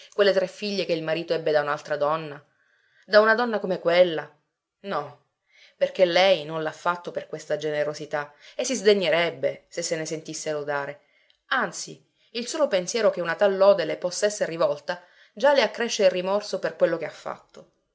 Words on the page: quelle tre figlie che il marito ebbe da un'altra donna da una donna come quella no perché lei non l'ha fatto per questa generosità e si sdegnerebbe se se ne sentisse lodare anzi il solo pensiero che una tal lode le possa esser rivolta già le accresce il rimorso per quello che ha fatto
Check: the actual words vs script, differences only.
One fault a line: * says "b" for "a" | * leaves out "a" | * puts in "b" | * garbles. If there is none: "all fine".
all fine